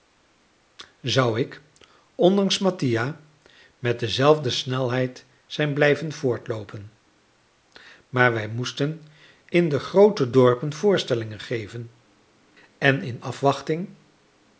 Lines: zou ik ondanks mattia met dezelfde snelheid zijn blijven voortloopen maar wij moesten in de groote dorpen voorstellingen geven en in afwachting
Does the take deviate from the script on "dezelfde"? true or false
false